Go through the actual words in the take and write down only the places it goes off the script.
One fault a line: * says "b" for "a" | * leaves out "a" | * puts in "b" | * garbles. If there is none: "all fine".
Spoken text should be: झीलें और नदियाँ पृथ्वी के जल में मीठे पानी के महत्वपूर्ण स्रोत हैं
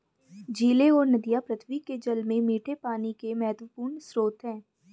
all fine